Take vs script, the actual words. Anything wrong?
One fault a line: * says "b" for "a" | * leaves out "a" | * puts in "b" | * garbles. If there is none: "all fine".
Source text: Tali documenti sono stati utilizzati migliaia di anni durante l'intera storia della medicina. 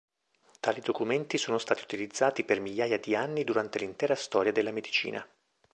* puts in "per"